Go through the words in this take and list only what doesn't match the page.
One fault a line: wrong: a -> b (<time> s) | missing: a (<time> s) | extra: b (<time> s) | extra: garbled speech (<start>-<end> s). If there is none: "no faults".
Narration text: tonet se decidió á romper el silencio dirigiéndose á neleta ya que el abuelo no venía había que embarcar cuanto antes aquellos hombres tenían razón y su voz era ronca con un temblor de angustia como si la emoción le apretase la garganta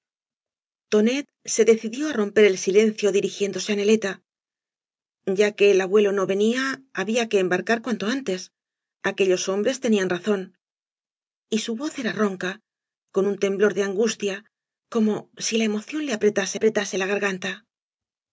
extra: apretase (16.5 s)